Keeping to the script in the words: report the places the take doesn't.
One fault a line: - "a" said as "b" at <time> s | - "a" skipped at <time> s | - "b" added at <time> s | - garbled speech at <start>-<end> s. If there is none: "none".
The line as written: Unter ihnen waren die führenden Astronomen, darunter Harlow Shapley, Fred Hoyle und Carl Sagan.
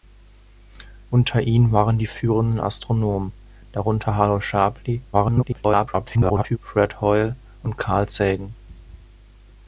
- garbled speech at 5.1-6.6 s